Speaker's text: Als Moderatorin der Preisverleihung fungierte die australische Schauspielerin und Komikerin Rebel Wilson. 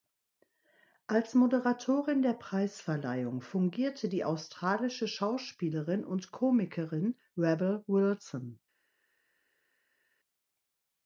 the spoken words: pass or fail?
pass